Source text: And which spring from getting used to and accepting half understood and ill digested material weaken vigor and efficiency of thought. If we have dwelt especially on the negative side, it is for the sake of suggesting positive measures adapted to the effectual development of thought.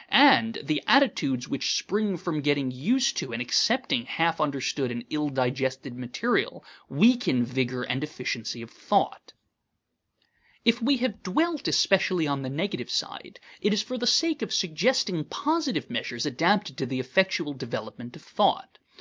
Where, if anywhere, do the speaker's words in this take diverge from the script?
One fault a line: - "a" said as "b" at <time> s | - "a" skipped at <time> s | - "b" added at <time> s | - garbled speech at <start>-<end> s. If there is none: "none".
- "the attitudes" added at 0.6 s